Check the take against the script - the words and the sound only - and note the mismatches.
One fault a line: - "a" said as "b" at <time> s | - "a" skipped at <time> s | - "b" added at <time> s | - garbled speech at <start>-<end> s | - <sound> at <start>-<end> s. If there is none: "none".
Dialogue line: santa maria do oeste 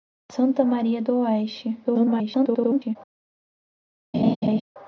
- garbled speech at 1.8-3.0 s
- laugh at 4.1-4.6 s